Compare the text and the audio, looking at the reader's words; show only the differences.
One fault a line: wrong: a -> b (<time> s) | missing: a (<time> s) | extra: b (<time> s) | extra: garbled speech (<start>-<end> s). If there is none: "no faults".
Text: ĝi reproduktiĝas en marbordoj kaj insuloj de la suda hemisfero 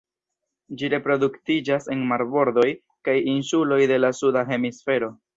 no faults